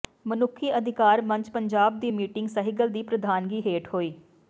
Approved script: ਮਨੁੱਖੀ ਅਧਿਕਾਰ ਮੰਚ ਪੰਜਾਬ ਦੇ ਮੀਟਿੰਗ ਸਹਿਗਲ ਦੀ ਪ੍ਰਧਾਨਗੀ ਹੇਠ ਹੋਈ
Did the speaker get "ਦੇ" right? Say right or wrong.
wrong